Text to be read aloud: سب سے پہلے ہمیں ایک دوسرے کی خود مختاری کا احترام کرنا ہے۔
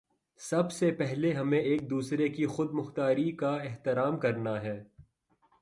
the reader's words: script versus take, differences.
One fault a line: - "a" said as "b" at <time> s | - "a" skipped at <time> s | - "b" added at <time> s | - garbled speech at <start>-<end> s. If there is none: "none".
none